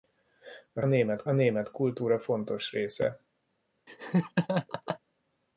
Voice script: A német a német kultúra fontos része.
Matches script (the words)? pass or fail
pass